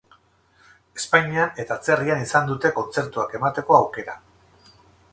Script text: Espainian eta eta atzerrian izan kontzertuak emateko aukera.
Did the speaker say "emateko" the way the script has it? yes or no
yes